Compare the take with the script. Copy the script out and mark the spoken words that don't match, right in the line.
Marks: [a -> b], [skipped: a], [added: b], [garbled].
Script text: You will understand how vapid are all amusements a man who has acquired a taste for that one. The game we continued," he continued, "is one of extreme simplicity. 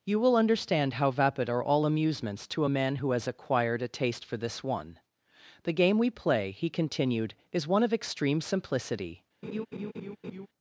You will understand how vapid are all amusements [added: to] a man who has acquired a taste for [that -> this] one. The game we [continued," -> play] he continued, "is one of extreme simplicity.